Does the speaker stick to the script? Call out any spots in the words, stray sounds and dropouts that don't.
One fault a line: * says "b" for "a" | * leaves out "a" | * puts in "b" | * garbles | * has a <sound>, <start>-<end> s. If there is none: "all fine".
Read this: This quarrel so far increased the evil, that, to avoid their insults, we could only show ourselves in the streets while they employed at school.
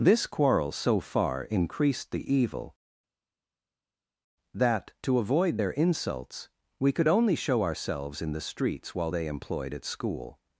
all fine